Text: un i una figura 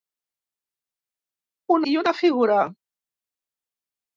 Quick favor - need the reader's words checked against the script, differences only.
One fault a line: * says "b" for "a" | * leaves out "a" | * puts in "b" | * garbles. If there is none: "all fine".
all fine